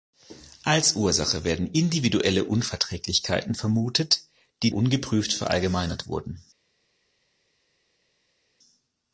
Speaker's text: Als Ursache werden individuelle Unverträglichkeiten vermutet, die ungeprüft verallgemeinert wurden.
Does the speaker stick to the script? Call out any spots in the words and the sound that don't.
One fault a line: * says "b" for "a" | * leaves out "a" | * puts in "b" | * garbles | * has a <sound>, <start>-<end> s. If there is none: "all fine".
all fine